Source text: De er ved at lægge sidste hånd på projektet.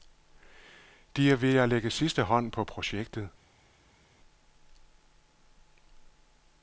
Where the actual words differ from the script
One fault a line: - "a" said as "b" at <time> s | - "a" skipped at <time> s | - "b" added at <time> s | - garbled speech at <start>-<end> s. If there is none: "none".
none